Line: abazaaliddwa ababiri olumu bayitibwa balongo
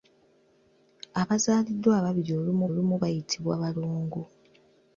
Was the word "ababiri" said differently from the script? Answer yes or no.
no